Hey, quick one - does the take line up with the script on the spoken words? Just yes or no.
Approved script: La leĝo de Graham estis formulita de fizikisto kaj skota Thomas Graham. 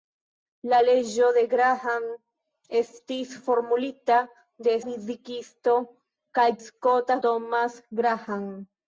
yes